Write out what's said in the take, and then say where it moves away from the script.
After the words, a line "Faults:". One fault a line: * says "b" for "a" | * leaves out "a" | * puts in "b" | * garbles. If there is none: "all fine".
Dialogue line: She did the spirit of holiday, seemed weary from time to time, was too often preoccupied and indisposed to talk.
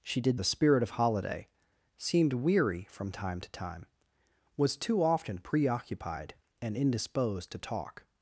She did the spirit of holiday, seemed weary from time to time, was too often preoccupied and indisposed to talk.
Faults:
all fine